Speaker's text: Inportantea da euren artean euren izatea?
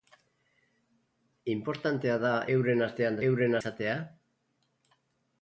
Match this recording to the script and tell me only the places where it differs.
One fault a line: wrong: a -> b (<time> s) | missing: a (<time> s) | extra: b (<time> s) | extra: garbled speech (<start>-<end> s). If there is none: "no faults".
no faults